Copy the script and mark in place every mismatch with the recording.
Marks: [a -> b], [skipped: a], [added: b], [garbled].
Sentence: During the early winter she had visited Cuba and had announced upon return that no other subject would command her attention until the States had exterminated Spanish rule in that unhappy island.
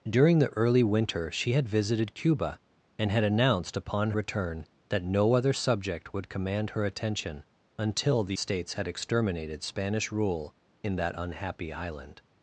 During the early winter she had visited Cuba and had announced upon return that no other subject would command her attention until the States had exterminated Spanish rule in that unhappy island.